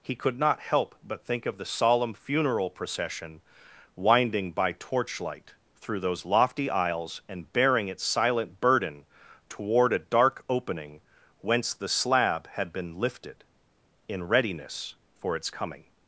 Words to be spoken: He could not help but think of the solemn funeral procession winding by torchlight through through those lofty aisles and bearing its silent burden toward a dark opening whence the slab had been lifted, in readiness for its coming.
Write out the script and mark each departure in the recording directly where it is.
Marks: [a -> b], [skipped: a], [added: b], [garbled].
He could not help but think of the solemn funeral procession winding by torchlight through [skipped: through] those lofty aisles and bearing its silent burden toward a dark opening whence the slab had been lifted, in readiness for its coming.